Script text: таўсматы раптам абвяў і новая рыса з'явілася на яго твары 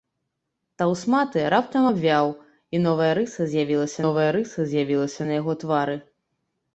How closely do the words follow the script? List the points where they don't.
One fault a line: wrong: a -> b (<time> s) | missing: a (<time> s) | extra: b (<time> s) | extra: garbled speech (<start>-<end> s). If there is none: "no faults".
extra: новая рыса з'явілася (4.0 s)